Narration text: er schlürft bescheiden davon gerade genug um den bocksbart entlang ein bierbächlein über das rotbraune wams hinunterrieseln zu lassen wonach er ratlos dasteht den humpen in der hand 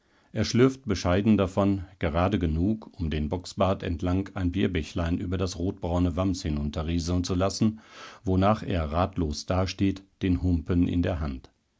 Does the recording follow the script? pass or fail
pass